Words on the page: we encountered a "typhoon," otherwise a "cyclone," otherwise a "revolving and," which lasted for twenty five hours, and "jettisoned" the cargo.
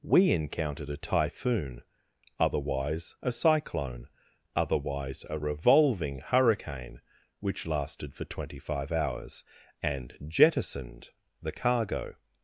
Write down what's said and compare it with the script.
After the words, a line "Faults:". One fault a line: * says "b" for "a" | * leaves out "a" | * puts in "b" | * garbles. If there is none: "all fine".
we encountered a "typhoon," otherwise a "cyclone," otherwise a "revolving hurricane," which lasted for twenty five hours, and "jettisoned" the cargo.
Faults:
* says "hurricane" for "and"